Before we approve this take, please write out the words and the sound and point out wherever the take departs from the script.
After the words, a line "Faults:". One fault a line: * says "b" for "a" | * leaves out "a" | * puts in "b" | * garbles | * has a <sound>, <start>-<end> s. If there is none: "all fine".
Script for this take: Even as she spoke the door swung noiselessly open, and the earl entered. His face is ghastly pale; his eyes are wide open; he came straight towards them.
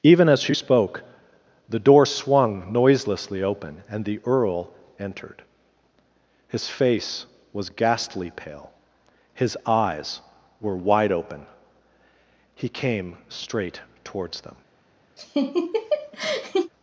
Even as she spoke the door swung noiselessly open, and the earl entered. His face was ghastly pale; his eyes were wide open; he came straight towards them.
Faults:
* says "was" for "is"
* says "were" for "are"
* has a laugh, 15.2-16.7 s